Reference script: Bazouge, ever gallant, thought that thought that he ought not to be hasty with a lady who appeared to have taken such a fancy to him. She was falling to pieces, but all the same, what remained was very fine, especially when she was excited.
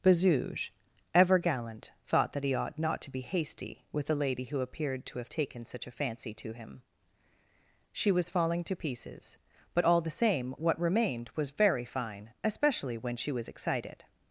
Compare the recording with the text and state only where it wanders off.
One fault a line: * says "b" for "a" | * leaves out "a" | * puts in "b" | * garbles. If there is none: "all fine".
* leaves out "thought that"